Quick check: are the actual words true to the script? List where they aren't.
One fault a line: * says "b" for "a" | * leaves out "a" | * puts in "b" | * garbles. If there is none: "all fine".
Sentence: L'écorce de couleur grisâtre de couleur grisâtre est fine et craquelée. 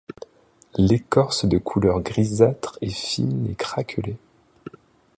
* leaves out "de couleur grisâtre"